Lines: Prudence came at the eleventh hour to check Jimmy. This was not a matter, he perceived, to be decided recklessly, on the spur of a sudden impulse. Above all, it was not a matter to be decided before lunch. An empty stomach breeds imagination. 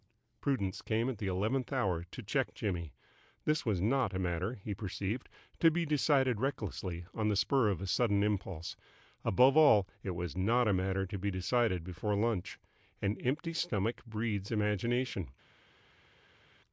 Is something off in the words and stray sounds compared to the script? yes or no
no